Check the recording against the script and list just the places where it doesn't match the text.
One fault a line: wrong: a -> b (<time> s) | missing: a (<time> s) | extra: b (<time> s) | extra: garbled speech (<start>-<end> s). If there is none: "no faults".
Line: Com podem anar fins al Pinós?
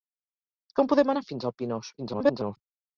extra: garbled speech (2.0-2.6 s)